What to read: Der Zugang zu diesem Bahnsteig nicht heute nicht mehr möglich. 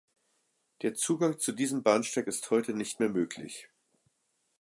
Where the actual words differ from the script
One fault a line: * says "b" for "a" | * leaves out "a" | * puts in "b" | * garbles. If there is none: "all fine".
* says "ist" for "nicht"